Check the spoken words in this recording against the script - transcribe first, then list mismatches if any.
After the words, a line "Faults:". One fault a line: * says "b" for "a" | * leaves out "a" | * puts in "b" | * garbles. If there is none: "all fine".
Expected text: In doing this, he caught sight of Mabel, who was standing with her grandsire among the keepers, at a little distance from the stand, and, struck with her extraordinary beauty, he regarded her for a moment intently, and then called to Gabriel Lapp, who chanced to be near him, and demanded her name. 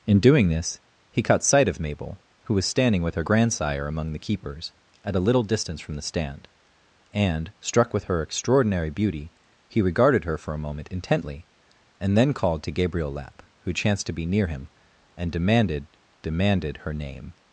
In doing this, he caught sight of Mabel, who was standing with her grandsire among the keepers, at a little distance from the stand, and, struck with her extraordinary beauty, he regarded her for a moment intently, and then called to Gabriel Lapp, who chanced to be near him, and demanded demanded her name.
Faults:
* puts in "demanded"